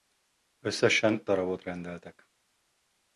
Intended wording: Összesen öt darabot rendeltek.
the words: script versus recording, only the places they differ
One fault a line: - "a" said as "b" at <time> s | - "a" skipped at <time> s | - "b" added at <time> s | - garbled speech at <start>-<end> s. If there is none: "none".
- "öt" skipped at 1.2 s